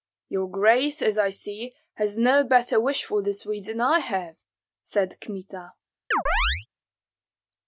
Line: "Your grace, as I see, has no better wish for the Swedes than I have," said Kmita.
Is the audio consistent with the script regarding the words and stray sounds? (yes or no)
no